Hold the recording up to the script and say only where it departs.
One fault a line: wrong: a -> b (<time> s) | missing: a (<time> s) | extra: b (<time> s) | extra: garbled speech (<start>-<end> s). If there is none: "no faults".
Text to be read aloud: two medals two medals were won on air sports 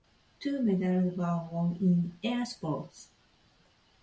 missing: two medals (1.1 s)
wrong: on -> in (1.8 s)